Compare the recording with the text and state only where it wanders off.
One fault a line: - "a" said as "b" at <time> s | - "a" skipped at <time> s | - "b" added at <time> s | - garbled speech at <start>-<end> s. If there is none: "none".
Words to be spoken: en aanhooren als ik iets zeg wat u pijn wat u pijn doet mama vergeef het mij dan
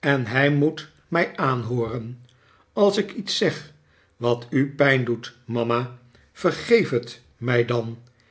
- "hij moet mij" added at 0.2 s
- "wat u pijn" skipped at 5.0 s